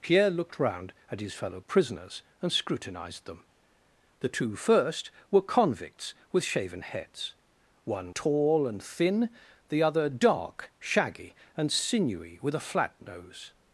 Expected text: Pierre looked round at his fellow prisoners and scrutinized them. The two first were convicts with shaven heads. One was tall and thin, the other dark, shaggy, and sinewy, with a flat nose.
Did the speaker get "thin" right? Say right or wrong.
right